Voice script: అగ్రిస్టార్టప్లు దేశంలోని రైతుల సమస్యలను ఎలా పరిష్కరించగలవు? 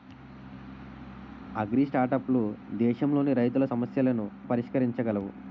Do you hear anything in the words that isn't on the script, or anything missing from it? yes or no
yes